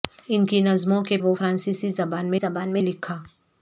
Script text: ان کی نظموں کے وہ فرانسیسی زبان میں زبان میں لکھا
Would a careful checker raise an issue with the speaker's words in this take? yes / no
no